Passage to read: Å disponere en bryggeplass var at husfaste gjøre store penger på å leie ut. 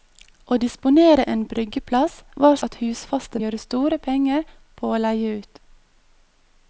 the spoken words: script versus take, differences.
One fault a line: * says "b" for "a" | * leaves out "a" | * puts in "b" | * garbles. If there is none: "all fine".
all fine